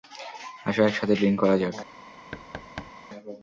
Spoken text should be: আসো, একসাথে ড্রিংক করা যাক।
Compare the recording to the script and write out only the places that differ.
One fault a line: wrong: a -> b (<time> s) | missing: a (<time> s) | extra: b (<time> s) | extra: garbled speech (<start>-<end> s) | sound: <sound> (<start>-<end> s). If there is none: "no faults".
sound: thud (2.3-2.9 s)